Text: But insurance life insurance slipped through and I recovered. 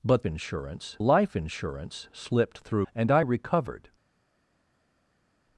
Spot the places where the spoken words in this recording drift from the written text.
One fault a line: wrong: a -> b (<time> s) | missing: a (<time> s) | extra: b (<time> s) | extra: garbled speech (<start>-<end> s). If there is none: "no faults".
no faults